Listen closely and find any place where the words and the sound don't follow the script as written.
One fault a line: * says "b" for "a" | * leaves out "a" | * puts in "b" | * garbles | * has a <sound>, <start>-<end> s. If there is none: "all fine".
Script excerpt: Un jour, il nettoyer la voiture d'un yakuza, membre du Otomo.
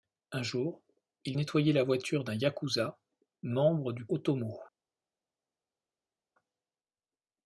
all fine